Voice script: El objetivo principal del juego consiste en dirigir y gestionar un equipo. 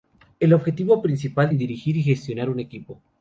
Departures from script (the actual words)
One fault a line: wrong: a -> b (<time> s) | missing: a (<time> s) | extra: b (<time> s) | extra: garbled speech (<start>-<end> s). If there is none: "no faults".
missing: del juego consiste (1.5 s)